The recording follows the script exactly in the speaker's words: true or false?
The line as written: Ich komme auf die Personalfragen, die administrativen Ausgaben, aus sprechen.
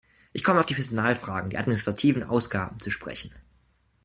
false